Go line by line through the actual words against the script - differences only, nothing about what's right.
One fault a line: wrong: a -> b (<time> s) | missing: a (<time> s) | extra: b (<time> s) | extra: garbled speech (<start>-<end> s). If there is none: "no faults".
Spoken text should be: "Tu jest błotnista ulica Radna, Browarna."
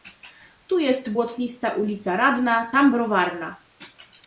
extra: tam (2.7 s)